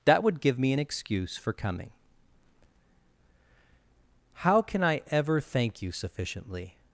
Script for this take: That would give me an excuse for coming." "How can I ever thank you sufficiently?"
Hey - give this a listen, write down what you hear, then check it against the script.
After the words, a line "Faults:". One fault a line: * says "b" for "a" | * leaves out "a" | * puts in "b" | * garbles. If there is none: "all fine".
That would give me an excuse for coming." "How can I ever thank you sufficiently?"
Faults:
all fine